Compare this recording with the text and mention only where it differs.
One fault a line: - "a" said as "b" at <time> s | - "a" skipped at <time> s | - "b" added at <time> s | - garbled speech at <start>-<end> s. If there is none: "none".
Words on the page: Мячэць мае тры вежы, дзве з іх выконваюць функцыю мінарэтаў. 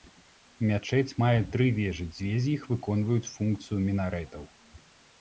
none